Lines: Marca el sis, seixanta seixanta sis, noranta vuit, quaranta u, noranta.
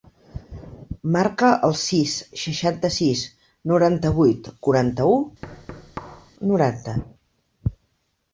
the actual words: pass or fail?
fail